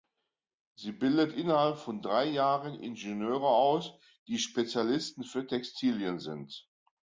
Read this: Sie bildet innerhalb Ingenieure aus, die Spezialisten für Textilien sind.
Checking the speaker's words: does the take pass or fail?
fail